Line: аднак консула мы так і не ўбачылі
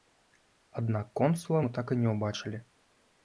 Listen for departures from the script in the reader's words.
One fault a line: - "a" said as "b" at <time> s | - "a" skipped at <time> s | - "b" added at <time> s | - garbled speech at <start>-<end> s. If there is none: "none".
none